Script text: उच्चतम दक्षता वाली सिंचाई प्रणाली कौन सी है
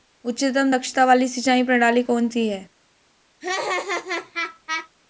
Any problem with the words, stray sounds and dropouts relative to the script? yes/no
yes